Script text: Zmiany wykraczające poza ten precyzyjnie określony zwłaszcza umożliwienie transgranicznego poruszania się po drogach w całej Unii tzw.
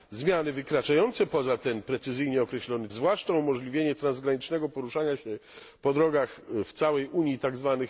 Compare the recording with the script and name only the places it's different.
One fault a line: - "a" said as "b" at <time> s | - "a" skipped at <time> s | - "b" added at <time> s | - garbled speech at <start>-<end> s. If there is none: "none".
none